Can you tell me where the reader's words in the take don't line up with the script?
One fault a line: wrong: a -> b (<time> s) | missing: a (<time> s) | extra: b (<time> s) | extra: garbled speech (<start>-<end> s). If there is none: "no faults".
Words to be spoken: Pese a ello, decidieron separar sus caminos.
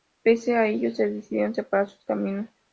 no faults